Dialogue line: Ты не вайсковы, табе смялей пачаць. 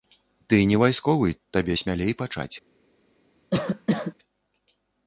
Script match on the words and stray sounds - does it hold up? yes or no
no